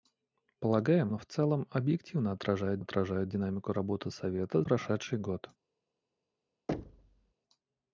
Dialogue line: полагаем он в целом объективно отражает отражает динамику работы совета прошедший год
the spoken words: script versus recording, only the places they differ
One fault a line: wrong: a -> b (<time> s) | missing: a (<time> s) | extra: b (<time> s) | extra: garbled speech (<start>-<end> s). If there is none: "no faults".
no faults